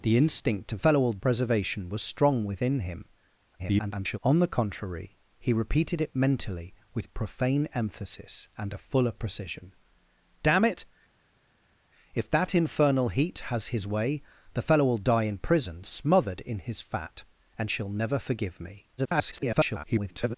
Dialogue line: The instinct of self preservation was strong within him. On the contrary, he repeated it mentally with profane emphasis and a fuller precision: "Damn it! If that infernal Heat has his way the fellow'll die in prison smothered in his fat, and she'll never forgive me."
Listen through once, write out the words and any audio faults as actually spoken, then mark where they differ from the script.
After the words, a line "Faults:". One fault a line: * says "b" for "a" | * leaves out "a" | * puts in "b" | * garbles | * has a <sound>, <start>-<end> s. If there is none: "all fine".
The instinct of fellow'll preservation was strong within him. [garbled] On the contrary, he repeated it mentally with profane emphasis and a fuller precision: "Damn it! If that infernal Heat has his way the fellow'll die in prison smothered in his fat, and she'll never forgive me." [garbled]
Faults:
* says "fellow'll" for "self"
* garbles
* garbles